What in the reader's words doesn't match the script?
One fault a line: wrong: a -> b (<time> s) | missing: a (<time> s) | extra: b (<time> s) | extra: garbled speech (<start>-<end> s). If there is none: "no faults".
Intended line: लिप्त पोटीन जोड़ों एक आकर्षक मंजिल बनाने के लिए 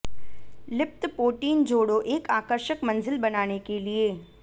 no faults